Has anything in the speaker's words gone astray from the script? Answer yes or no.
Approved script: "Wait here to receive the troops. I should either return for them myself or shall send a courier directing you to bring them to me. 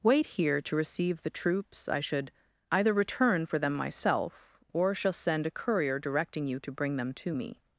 no